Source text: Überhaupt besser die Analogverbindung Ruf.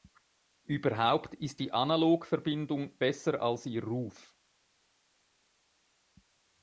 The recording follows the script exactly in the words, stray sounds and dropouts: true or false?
false